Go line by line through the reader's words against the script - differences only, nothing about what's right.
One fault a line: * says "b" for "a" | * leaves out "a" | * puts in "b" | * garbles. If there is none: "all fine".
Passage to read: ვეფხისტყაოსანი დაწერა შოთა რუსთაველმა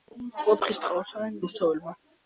* leaves out "დაწერა შოთა"